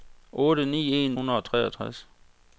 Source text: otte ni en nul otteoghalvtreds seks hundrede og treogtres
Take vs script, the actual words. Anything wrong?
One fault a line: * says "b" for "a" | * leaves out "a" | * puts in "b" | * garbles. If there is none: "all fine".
* leaves out "nul otteoghalvtreds seks"